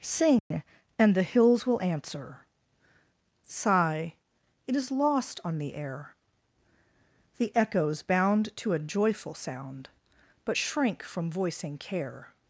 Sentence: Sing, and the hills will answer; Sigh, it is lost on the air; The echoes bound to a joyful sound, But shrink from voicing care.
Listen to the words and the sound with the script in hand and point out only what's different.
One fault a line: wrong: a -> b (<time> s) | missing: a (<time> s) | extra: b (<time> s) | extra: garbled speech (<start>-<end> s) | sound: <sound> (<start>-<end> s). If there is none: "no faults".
sound: dropout (0.4-0.5 s)